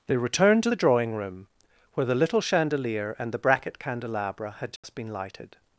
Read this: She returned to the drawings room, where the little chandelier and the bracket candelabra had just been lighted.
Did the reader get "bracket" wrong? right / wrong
right